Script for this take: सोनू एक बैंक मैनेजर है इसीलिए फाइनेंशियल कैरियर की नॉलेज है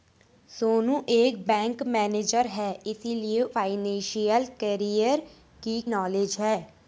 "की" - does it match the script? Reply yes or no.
yes